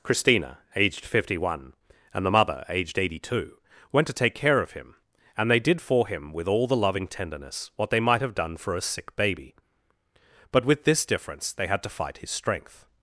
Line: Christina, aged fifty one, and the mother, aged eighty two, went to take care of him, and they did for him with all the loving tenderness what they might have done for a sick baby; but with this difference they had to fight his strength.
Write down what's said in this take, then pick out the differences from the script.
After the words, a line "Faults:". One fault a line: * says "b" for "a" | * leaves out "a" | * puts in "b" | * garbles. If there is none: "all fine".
Christina, aged fifty one, and the mother, aged eighty two, went to take care of him, and they did for him with all the loving tenderness what they might have done for a sick baby; but with this difference they had to fight his strength.
Faults:
all fine